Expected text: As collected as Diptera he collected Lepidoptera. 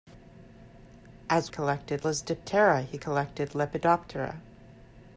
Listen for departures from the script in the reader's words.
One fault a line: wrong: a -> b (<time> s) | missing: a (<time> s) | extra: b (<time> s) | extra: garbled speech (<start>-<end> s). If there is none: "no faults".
no faults